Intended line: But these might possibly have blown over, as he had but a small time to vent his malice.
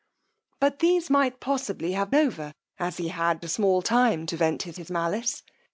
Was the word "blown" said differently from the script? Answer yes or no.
yes